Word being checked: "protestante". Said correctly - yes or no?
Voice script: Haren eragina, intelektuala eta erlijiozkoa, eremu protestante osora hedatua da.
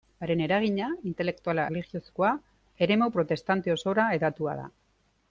yes